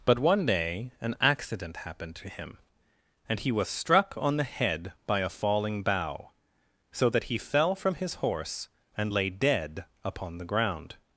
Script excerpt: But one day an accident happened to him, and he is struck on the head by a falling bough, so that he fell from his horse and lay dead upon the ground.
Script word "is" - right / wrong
wrong